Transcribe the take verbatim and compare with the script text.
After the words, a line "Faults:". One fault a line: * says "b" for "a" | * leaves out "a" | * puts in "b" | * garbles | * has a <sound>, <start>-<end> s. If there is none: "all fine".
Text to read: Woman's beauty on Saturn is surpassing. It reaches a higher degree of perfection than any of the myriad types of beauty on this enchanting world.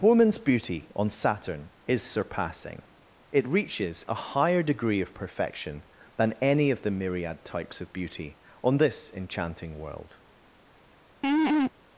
Woman's beauty on Saturn is surpassing. It reaches a higher degree of perfection than any of the myriad types of beauty on this enchanting world.
Faults:
* has a laugh, 11.2-11.7 s